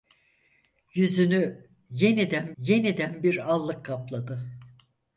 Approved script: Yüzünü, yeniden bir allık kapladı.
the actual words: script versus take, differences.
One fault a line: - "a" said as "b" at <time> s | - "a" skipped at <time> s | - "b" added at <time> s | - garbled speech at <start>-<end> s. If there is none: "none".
- "yeniden" added at 2.6 s